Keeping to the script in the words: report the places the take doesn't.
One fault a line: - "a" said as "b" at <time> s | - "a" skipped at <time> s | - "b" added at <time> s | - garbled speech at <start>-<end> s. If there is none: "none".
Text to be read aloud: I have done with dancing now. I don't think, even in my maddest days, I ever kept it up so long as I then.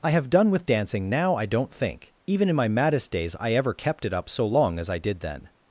- "did" added at 5.0 s